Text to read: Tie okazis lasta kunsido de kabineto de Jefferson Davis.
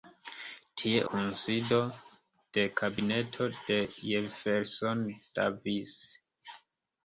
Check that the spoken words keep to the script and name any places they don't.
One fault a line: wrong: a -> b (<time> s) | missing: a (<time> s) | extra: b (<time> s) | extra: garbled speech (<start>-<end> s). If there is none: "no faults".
missing: okazis lasta (1.0 s)